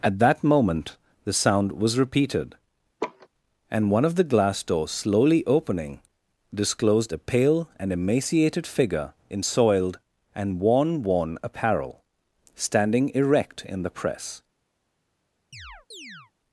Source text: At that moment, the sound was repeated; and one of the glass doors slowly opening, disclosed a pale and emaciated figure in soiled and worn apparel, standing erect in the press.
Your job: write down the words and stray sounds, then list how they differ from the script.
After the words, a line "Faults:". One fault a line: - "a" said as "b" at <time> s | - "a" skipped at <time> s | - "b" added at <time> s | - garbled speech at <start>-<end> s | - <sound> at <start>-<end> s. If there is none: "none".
At that moment, the sound was repeated; and one of the glass doors slowly opening, disclosed a pale and emaciated figure in soiled and worn worn apparel, standing erect in the press.
Faults:
- laugh at 3.0-3.3 s
- "worn" added at 11.0 s
- chirp at 15.5-16.3 s